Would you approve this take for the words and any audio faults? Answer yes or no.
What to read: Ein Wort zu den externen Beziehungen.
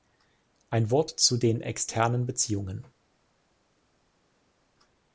yes